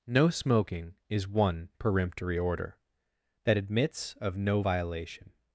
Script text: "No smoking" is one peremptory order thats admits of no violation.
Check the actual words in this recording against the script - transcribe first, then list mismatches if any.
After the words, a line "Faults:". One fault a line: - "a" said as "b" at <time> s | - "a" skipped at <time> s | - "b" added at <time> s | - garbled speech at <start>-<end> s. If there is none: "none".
"No smoking" is one peremptory order that admits of no violation.
Faults:
- "thats" said as "that" at 3.4 s